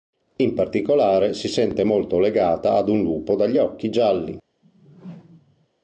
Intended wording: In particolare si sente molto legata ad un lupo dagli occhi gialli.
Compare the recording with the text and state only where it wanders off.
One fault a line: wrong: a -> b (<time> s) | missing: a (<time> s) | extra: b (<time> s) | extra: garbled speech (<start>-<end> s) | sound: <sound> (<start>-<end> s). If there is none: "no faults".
sound: whoosh (4.6-5.7 s)